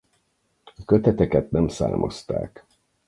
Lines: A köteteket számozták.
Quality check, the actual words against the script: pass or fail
fail